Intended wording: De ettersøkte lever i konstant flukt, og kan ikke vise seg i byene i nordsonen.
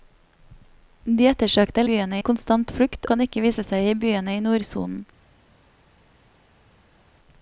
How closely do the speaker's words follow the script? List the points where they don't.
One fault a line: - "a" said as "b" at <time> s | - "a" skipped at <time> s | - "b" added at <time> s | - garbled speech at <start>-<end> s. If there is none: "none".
- "lever" said as "byene" at 1.9 s
- "og" skipped at 3.1 s